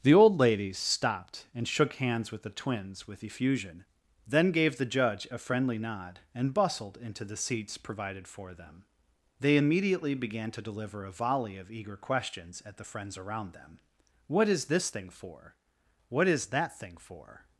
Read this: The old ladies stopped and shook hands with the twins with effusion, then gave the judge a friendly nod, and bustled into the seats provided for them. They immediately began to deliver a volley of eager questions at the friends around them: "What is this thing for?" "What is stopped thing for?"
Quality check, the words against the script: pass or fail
fail